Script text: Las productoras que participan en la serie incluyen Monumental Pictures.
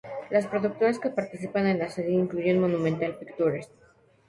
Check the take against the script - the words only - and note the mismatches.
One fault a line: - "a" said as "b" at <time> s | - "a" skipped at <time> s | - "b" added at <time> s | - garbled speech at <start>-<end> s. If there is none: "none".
none